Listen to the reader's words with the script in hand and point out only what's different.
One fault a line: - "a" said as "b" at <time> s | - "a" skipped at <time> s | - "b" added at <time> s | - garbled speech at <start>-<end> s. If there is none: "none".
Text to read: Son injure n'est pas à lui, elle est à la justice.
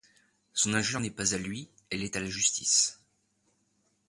none